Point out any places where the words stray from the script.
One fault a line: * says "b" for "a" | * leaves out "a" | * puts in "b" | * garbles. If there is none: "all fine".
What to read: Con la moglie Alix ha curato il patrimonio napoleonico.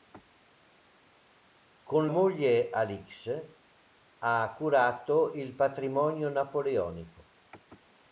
* leaves out "la"